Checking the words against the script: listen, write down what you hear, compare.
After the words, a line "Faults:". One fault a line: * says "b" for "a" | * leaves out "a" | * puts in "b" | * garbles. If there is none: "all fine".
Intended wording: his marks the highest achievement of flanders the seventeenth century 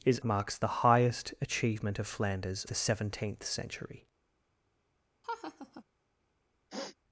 his marks the highest achievement of flanders the seventeenth century
Faults:
all fine